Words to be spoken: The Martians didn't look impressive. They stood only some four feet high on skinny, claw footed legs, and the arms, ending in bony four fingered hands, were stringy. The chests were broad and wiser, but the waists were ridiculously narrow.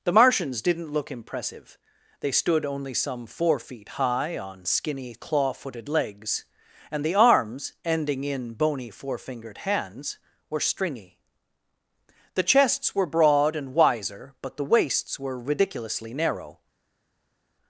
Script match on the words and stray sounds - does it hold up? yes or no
yes